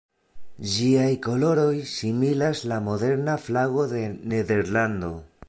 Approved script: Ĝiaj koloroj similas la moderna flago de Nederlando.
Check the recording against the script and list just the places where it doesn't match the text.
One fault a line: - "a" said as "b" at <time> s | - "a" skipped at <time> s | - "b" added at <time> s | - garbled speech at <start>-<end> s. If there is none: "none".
none